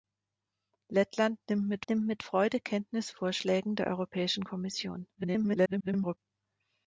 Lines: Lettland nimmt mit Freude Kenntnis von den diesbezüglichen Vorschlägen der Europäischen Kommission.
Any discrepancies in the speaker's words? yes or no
yes